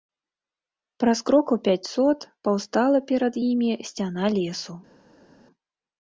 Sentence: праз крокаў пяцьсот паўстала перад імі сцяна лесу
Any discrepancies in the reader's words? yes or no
no